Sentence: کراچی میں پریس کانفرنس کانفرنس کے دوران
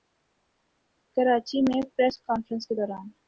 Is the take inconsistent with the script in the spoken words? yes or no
yes